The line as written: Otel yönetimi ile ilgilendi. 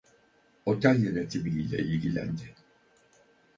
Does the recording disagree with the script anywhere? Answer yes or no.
no